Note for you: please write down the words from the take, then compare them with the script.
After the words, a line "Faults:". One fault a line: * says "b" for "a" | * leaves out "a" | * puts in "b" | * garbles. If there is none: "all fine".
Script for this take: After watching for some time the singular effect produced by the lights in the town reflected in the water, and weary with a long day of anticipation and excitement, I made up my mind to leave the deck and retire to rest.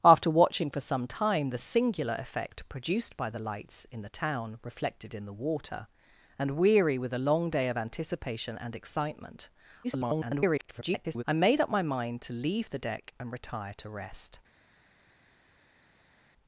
After watching for some time the singular effect produced by the lights in the town reflected in the water, and weary with a long day of anticipation and excitement, [garbled] I made up my mind to leave the deck and retire to rest.
Faults:
* garbles